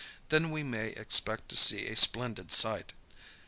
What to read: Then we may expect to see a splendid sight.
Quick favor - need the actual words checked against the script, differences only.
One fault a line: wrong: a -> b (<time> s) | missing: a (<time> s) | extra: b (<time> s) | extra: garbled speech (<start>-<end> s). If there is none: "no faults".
no faults